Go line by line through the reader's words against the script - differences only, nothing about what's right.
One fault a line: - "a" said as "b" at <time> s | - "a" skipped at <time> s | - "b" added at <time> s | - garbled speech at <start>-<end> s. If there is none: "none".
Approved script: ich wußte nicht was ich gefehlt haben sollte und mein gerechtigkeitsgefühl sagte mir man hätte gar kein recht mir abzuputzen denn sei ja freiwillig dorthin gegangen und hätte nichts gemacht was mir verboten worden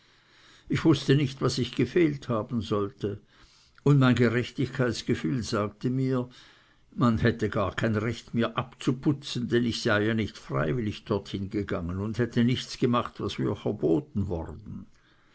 - "ich" added at 9.6 s
- "nicht" added at 10.2 s